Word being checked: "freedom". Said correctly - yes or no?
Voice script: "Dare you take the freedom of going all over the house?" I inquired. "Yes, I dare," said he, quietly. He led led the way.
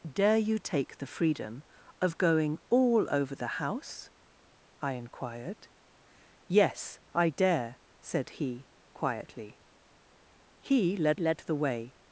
yes